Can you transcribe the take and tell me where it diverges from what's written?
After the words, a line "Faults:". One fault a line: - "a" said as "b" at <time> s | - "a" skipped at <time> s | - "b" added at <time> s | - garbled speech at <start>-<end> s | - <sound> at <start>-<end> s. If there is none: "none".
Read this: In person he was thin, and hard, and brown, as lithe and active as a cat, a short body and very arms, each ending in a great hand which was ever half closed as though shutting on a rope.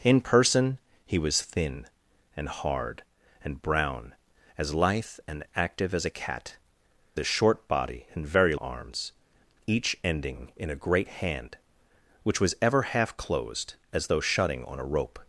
In person he was thin, and hard, and brown, as lithe and active as a cat, a short body and very arms, each ending in a great hand which was ever half closed as though shutting on a rope.
Faults:
none